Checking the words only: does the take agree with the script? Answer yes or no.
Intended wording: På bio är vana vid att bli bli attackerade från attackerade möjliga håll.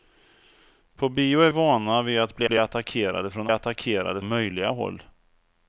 yes